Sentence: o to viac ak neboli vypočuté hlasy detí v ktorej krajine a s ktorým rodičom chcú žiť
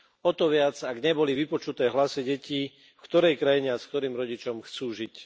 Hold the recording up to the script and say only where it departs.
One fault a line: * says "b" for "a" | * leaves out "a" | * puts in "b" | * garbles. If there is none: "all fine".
all fine